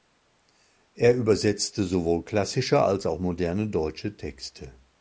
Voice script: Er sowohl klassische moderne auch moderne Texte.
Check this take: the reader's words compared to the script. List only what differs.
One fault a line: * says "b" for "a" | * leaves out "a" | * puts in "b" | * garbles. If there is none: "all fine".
* puts in "übersetzte"
* says "als" for "moderne"
* puts in "deutsche"